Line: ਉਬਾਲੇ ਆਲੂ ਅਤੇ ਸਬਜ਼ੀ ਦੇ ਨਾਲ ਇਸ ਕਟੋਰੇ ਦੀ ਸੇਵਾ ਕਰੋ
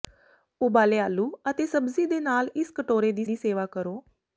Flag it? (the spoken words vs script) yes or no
yes